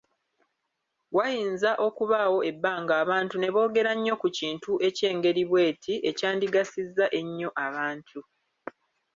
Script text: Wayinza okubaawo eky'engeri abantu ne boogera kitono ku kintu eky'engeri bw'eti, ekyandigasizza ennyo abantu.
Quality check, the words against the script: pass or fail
fail